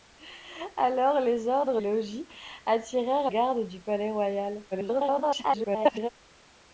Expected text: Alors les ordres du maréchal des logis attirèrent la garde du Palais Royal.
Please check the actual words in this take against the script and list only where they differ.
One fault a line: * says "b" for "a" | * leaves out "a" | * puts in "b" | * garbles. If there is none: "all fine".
* leaves out "du maréchal des"
* leaves out "la"
* garbles